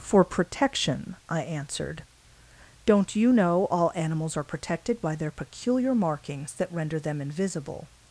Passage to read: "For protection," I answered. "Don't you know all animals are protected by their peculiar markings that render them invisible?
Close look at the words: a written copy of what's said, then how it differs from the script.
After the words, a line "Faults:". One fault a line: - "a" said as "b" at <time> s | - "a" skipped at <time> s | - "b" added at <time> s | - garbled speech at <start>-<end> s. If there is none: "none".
"For protection," I answered. "Don't you know all animals are protected by their peculiar markings that render them invisible?
Faults:
none